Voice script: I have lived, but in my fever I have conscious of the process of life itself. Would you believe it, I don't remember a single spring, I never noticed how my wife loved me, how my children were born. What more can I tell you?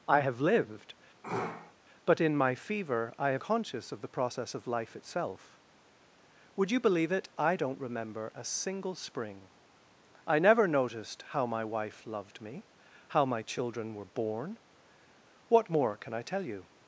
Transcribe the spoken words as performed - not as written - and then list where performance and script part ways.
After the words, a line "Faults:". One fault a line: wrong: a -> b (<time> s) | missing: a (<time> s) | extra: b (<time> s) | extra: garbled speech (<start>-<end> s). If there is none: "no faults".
I have lived, but in my fever I have conscious of the process of life itself. Would you believe it, I don't remember a single spring, I never noticed how my wife loved me, how my children were born. What more can I tell you?
Faults:
no faults